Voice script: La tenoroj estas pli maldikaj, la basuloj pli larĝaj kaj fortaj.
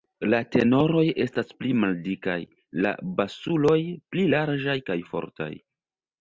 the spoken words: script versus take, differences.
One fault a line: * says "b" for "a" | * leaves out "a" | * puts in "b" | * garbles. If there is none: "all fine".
all fine